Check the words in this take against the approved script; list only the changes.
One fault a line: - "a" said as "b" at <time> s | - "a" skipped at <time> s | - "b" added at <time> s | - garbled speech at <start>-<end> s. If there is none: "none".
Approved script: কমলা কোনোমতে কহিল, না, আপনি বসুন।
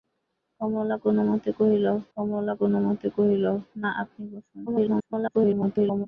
- "কমলা কোনোমতে কহিল" added at 2.2 s
- garbled speech at 4.7-6.1 s